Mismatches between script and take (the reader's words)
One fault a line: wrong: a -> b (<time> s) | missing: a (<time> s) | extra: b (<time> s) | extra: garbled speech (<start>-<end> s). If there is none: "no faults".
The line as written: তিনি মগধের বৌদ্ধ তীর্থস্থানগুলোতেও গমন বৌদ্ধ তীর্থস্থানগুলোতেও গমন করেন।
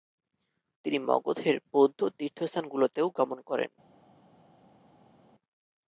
missing: বৌদ্ধ তীর্থস্থানগুলোতেও গমন (3.4 s)